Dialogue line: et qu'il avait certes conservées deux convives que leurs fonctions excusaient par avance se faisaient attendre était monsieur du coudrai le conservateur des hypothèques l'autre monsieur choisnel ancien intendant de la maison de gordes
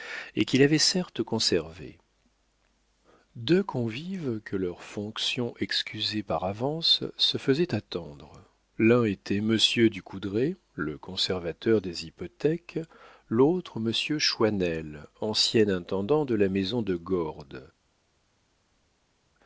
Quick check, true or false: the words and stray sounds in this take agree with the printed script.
false